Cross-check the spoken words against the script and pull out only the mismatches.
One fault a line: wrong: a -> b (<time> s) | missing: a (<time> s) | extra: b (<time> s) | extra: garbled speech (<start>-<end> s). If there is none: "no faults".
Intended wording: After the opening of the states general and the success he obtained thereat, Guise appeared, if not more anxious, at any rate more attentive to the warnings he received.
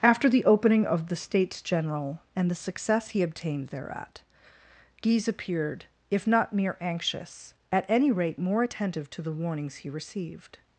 wrong: more -> mere (6.5 s)